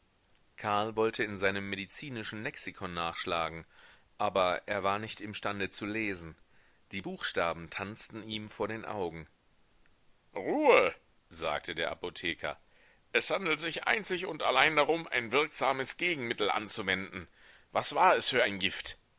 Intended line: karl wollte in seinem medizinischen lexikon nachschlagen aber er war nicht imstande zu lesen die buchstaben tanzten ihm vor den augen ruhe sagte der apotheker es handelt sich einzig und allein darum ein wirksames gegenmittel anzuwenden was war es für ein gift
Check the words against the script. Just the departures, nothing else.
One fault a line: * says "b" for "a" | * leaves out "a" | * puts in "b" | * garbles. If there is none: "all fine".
all fine